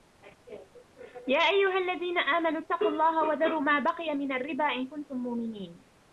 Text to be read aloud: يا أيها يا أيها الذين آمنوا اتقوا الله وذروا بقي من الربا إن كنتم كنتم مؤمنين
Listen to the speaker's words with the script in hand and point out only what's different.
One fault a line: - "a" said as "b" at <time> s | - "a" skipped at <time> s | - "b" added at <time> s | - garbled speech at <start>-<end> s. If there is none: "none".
- "يا أيها" skipped at 1.8 s
- "ما" added at 3.6 s
- "كنتم" skipped at 5.2 s